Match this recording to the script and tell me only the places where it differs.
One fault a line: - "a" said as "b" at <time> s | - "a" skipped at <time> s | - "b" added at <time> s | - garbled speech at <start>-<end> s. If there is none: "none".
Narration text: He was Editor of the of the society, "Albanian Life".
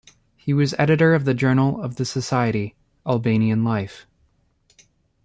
- "journal" added at 1.4 s